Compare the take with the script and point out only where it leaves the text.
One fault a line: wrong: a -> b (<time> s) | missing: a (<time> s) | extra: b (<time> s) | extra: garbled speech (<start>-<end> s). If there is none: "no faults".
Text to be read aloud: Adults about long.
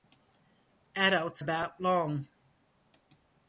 no faults